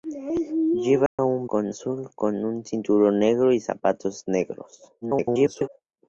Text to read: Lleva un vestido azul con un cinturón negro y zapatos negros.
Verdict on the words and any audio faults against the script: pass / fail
fail